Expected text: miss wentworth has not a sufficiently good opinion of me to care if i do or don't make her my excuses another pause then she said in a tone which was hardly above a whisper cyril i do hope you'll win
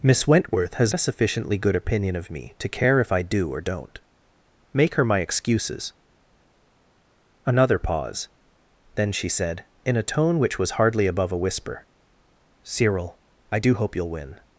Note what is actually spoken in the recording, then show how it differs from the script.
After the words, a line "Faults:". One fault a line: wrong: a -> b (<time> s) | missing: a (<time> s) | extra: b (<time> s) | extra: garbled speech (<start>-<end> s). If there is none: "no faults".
miss wentworth has a sufficiently good opinion of me to care if i do or don't make her my excuses another pause then she said in a tone which was hardly above a whisper cyril i do hope you'll win
Faults:
missing: not (0.9 s)